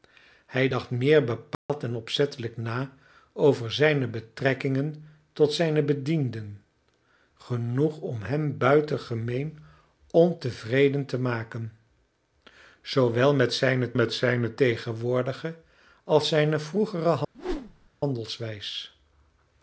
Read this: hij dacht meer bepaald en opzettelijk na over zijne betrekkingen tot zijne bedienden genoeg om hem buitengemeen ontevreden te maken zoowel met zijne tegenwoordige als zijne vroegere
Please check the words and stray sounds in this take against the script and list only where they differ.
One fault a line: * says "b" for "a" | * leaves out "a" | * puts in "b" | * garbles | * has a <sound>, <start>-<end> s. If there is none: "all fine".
* has a dropout, 1.5-1.7 s
* puts in "met zijne"
* has a whoosh, 17.3-17.9 s